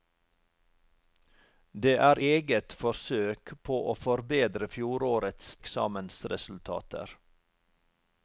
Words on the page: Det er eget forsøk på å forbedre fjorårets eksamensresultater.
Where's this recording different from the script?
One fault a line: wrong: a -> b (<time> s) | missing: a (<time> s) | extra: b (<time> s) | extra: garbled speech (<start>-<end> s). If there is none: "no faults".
no faults